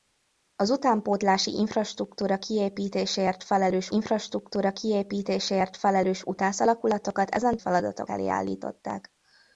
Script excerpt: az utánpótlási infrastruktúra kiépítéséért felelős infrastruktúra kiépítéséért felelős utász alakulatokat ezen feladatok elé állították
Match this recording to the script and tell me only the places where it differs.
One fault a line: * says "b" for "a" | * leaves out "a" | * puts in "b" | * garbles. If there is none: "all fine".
all fine